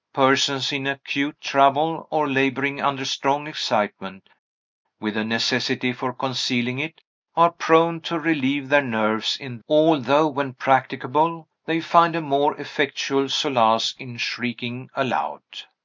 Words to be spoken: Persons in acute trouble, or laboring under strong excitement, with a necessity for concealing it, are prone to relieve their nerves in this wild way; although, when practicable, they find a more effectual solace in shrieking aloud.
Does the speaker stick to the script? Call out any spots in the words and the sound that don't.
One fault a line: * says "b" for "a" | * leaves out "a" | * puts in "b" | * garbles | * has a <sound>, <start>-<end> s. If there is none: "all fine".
* leaves out "this wild way"